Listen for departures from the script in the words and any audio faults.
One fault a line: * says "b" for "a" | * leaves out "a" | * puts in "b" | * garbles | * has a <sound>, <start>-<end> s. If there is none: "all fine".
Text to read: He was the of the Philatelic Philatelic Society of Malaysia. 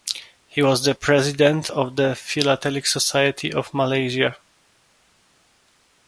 * puts in "president"
* leaves out "Philatelic"